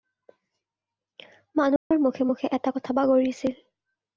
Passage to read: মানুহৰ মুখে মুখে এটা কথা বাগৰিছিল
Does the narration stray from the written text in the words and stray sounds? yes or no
yes